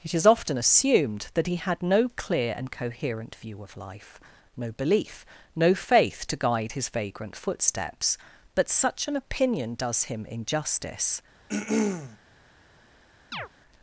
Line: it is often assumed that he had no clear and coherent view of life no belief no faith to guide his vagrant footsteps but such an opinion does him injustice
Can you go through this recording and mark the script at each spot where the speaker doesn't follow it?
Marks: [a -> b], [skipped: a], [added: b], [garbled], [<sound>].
it is often assumed that he had no clear and coherent view of life no belief no faith to guide his vagrant footsteps but such an opinion does him injustice [throat clearing] [chirp]